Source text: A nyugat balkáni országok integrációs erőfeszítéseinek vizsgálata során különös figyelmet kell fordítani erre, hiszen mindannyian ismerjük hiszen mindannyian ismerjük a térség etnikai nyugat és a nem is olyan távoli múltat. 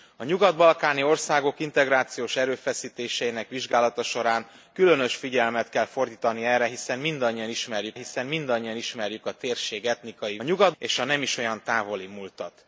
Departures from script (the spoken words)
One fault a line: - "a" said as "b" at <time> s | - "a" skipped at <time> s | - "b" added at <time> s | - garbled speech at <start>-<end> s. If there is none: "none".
none